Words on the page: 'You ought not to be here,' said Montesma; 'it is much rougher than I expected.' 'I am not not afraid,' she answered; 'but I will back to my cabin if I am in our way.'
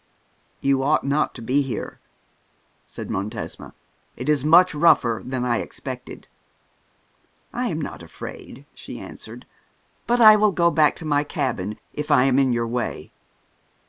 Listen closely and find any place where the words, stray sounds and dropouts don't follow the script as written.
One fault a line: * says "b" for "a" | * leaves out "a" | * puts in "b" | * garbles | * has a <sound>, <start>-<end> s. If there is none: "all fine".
* leaves out "not"
* puts in "go"
* says "your" for "our"